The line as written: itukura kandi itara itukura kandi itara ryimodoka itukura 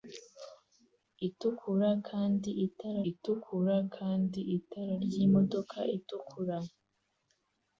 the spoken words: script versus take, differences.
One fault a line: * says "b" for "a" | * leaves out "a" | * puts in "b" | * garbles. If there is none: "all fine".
all fine